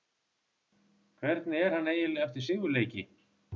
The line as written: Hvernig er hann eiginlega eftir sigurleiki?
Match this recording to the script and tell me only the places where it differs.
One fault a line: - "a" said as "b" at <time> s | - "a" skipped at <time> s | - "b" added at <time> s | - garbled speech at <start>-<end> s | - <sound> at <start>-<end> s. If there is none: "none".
none